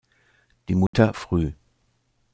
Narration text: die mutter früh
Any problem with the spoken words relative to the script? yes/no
no